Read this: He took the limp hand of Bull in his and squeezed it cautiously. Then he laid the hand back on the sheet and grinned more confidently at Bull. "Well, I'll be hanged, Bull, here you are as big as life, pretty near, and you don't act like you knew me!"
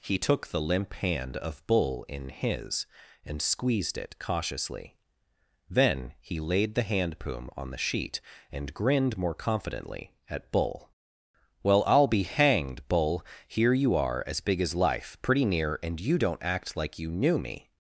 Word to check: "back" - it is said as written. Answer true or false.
false